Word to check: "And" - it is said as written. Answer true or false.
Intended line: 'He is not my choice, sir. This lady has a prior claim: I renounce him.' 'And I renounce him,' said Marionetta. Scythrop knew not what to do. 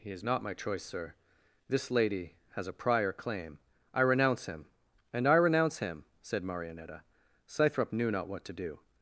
true